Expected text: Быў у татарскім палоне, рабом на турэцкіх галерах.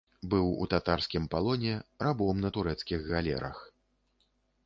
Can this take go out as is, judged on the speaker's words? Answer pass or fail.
pass